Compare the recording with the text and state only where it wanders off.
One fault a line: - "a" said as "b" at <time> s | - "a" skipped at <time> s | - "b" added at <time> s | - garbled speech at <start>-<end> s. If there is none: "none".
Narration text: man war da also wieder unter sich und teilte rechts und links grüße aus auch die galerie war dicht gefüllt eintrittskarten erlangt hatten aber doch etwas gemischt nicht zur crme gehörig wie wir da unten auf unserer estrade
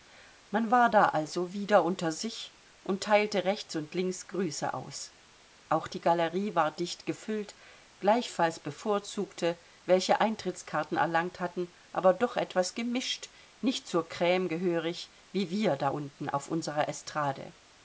- "gleichfalls bevorzugte welche" added at 8.0 s